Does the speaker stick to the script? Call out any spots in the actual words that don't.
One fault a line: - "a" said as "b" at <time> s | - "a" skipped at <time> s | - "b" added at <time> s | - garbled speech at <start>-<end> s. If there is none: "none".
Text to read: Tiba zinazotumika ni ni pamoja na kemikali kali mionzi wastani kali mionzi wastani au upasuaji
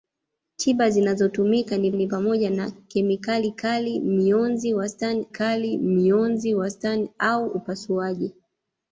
none